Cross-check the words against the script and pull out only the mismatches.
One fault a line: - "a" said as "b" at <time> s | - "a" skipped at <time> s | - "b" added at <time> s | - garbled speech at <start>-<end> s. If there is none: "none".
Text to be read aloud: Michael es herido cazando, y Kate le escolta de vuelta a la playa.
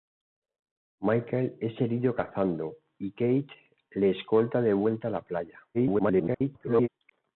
- garbled speech at 5.7-6.9 s